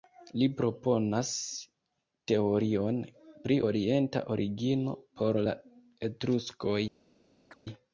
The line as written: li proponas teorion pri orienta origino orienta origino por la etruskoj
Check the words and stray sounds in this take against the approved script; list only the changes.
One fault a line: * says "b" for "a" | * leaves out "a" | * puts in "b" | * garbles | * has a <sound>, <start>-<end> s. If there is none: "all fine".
* leaves out "orienta origino"
* has a chirp, 7.5-7.6 s